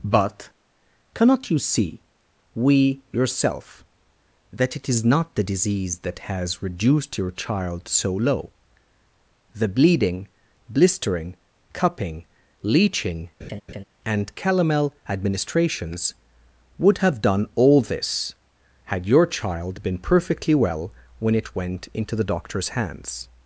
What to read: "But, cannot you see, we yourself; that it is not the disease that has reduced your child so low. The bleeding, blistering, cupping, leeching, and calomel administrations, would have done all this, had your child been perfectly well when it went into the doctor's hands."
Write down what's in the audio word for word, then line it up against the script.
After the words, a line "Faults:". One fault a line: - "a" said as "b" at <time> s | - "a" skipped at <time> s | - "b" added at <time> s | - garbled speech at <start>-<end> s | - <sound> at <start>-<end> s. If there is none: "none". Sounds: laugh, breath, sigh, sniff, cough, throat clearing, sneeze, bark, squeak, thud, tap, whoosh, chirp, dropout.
"But, cannot you see, we yourself; that it is not the disease that has reduced your child so low. The bleeding, blistering, cupping, leeching, and calomel administrations, would have done all this, had your child been perfectly well when it went into the doctor's hands."
Faults:
- laugh at 13.4-13.8 s